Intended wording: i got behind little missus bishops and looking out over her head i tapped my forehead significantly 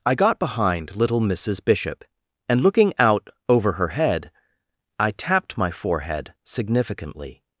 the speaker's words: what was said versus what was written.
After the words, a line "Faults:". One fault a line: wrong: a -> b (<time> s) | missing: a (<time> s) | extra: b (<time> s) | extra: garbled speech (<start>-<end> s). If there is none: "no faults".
i got behind little missus bishop and looking out over her head i tapped my forehead significantly
Faults:
wrong: bishops -> bishop (1.6 s)